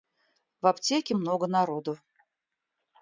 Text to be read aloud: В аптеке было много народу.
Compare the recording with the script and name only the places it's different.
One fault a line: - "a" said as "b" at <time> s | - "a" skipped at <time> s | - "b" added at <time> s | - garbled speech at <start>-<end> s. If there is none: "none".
- "было" skipped at 1.1 s